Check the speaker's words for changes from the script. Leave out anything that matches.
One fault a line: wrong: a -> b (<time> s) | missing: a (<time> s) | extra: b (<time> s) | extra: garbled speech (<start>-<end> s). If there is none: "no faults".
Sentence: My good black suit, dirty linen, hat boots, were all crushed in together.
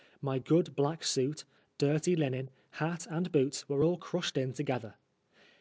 extra: and (3.1 s)